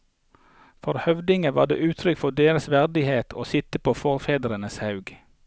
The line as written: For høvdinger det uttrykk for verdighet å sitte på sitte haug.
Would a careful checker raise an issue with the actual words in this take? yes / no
yes